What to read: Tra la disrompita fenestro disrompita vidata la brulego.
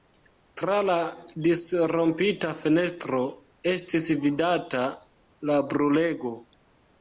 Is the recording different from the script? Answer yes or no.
yes